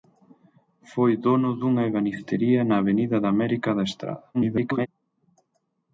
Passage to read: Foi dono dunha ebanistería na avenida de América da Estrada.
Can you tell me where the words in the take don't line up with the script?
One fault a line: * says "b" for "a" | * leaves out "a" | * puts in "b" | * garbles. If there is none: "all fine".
* garbles